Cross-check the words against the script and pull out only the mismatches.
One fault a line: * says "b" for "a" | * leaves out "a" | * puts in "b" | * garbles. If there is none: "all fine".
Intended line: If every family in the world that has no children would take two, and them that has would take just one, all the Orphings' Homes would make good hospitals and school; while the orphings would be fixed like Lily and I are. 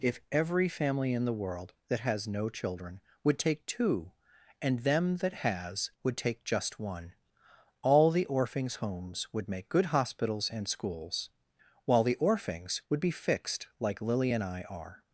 * says "schools" for "school"